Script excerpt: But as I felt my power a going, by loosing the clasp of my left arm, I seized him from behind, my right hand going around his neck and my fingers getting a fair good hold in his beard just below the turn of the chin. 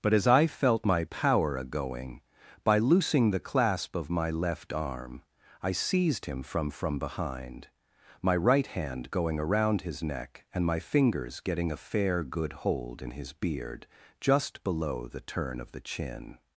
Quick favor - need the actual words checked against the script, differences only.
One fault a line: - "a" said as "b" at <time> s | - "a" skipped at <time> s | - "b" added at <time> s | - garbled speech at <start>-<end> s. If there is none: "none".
- "from" added at 6.7 s